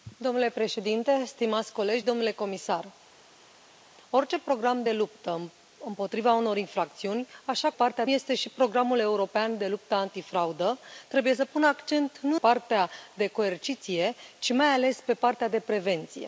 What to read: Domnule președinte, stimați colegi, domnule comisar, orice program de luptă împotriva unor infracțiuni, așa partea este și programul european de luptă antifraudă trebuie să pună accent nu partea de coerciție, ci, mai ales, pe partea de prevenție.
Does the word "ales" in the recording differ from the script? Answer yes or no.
no